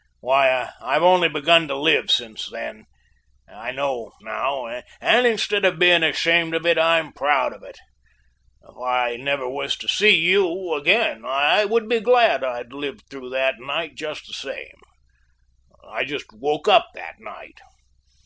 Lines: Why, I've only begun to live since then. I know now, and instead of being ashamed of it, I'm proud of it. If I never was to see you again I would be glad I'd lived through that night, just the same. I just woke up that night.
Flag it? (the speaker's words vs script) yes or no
no